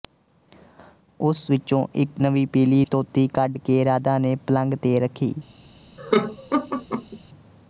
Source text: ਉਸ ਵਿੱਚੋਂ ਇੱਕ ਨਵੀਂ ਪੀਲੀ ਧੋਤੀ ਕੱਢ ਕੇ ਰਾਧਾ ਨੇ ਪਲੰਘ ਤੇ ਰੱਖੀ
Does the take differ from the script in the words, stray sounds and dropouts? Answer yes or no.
yes